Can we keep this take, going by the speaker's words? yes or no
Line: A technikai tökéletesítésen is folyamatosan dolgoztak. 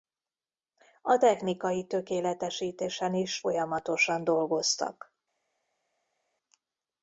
yes